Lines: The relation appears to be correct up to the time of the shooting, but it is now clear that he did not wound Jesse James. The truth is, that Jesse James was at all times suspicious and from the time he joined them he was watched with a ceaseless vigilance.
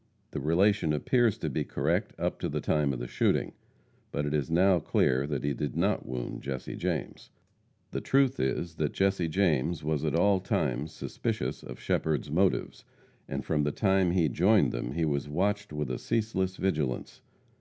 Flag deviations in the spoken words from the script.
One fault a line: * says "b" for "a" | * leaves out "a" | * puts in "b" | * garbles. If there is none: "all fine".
* puts in "of Shepherd's motives"